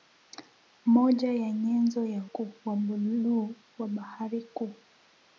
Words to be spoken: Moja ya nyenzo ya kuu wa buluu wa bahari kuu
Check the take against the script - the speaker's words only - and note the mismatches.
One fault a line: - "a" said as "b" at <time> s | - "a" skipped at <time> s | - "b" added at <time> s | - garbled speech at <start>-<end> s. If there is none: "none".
none